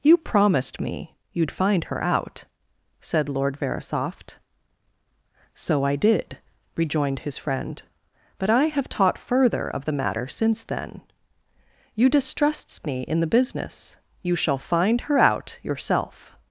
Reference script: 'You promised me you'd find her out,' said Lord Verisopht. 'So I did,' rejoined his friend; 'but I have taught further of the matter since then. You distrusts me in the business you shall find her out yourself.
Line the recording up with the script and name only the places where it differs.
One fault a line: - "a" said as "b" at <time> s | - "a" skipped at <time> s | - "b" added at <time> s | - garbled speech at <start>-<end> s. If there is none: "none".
none